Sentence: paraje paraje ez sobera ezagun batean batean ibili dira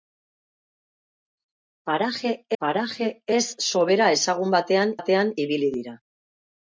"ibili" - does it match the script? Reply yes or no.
yes